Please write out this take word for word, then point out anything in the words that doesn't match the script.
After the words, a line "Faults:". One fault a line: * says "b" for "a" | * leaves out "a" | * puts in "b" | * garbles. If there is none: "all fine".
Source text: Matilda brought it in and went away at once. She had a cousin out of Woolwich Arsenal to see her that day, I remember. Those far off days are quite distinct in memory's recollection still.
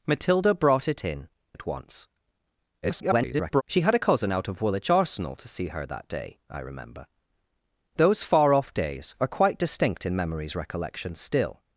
Matilda brought it in at once. [garbled] She had a cousin out of Woolwich Arsenal to see her that day, I remember. Those far off days are quite distinct in memory's recollection still.
Faults:
* leaves out "and went away"
* garbles